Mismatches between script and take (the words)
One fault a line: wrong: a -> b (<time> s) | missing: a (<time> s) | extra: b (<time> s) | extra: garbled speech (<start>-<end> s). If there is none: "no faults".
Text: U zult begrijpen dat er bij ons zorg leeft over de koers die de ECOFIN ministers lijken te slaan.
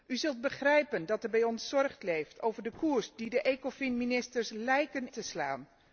no faults